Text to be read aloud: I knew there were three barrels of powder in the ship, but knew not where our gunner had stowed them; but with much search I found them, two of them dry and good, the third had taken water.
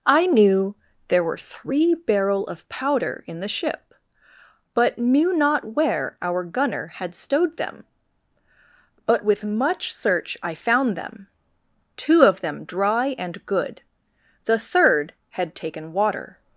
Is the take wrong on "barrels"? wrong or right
wrong